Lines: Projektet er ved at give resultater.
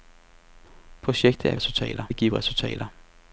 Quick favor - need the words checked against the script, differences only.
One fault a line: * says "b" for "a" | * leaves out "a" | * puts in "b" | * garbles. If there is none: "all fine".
* says "resultater" for "ved"